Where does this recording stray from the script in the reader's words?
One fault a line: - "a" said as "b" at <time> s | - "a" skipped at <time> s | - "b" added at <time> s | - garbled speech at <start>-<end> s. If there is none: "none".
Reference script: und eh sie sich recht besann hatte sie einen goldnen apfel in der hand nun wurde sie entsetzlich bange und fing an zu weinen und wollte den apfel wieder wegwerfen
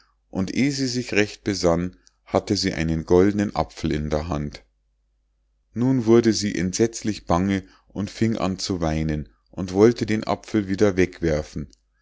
none